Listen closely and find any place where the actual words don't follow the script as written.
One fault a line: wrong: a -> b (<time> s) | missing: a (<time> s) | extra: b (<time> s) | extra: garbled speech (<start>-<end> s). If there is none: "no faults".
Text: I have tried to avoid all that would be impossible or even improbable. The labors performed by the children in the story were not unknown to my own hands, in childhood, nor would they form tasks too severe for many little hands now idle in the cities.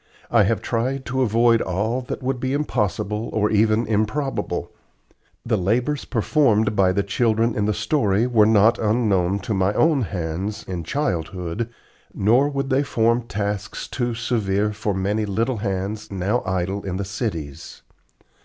no faults